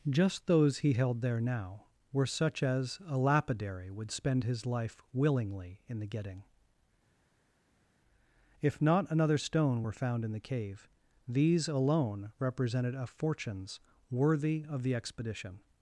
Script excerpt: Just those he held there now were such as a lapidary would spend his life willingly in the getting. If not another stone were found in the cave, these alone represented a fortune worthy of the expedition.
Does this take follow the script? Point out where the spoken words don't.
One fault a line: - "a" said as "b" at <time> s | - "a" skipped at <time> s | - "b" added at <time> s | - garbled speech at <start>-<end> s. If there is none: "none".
- "fortune" said as "fortunes" at 13.1 s